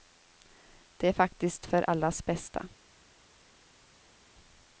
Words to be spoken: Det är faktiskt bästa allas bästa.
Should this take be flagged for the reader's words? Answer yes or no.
yes